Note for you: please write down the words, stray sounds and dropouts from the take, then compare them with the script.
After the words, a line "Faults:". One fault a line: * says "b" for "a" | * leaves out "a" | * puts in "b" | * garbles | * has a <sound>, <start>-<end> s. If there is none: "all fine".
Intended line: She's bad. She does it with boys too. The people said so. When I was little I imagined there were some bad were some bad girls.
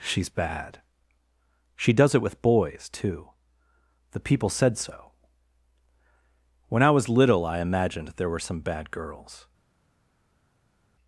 She's bad. She does it with boys too. The people said so. When I was little I imagined there were some bad girls.
Faults:
* leaves out "were some bad"